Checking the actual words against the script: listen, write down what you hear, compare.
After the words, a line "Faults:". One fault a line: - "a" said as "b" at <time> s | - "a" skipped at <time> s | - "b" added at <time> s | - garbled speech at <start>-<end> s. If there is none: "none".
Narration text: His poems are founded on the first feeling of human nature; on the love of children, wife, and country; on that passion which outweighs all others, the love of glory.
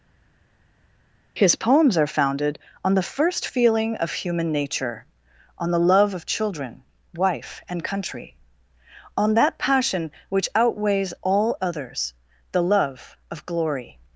His poems are founded on the first feeling of human nature; on the love of children, wife, and country; on that passion which outweighs all others, the love of glory.
Faults:
none